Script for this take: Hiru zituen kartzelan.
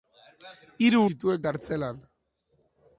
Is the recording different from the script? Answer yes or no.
no